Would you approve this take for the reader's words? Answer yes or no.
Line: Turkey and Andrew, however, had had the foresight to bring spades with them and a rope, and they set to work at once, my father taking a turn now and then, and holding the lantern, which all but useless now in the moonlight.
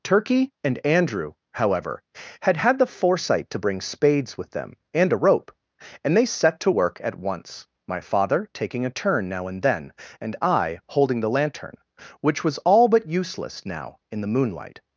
no